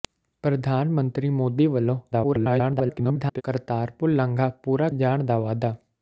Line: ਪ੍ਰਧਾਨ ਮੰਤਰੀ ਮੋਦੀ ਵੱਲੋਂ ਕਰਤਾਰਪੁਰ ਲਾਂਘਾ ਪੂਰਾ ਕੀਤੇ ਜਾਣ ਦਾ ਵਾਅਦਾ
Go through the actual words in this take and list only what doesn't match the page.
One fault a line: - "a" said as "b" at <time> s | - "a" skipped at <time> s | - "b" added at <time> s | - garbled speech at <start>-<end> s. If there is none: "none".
- garbled speech at 2.1-3.4 s
- "ਕੀਤੇ" skipped at 4.9 s